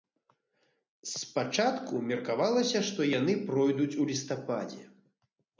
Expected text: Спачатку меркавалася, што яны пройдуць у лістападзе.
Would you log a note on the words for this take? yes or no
no